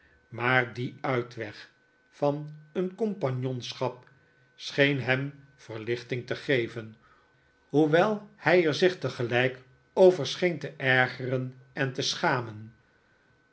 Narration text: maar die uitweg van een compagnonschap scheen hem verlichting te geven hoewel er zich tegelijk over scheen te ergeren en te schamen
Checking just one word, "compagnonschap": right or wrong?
right